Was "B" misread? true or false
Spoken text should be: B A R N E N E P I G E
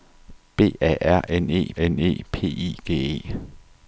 false